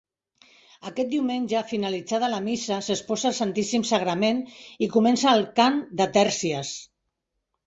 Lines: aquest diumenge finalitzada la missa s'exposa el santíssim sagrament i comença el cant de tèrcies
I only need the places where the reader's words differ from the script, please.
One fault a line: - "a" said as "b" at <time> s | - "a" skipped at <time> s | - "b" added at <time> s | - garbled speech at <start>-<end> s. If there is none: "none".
none